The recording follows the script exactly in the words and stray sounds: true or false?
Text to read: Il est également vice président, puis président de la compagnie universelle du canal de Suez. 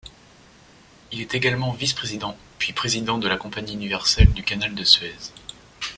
true